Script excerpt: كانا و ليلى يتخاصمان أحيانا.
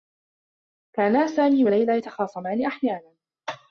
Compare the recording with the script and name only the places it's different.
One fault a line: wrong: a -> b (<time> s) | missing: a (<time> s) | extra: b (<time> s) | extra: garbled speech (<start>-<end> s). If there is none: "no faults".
extra: سامي (1.3 s)